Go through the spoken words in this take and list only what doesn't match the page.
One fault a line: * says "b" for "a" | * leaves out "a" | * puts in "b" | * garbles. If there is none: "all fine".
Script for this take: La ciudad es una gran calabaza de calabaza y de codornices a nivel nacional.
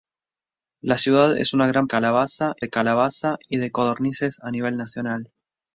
all fine